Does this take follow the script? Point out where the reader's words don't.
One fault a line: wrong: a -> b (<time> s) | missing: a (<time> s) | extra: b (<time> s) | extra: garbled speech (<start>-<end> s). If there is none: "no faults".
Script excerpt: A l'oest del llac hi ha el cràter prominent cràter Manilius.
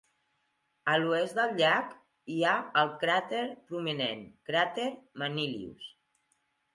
no faults